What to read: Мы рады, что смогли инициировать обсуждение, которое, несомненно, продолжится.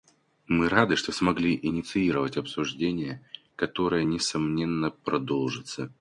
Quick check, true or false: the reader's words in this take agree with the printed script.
true